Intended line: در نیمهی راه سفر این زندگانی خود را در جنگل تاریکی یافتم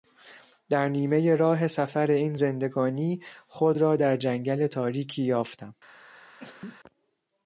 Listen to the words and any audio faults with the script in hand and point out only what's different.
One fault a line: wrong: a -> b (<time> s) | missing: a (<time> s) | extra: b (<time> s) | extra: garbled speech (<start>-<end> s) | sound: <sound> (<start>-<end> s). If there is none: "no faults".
sound: sneeze (6.4-6.8 s)